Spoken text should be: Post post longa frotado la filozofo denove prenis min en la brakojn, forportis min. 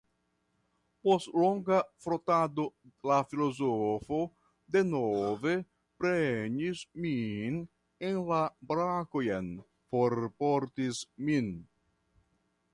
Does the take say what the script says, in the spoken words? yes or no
no